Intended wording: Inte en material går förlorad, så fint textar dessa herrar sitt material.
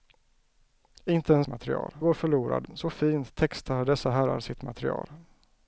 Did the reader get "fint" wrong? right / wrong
right